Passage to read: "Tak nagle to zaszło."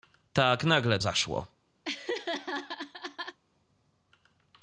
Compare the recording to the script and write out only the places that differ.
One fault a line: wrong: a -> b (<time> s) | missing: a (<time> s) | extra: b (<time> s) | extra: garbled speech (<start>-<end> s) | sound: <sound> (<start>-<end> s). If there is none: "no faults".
missing: to (1.0 s)
sound: laugh (1.8-3.4 s)